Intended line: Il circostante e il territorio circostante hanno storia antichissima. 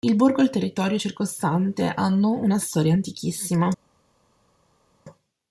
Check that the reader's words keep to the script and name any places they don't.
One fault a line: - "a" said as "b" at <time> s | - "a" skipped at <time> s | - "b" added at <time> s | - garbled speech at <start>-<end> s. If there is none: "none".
- "circostante" said as "borgo" at 0.1 s
- "una" added at 2.3 s